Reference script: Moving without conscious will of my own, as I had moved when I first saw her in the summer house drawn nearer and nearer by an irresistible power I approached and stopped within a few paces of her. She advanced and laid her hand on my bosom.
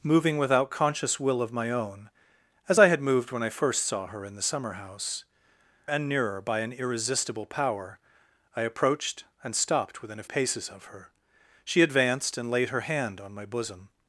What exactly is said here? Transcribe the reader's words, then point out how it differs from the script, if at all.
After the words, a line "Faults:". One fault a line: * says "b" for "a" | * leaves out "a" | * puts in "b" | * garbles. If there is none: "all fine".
Moving without conscious will of my own, as I had moved when I first saw her in the summer house and nearer by an irresistible power I approached and stopped within a paces of her. She advanced and laid her hand on my bosom.
Faults:
* leaves out "drawn nearer"
* leaves out "few"